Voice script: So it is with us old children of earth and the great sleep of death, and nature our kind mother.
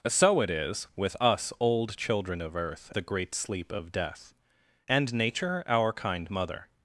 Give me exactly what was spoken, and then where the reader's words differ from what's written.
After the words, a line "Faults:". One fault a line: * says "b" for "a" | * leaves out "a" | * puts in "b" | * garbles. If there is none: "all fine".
So it is with us old children of earth the great sleep of death, and nature our kind mother.
Faults:
* leaves out "and"